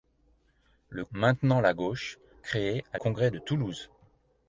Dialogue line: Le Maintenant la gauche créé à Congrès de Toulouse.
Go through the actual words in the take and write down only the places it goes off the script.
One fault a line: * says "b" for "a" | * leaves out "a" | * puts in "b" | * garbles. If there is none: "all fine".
all fine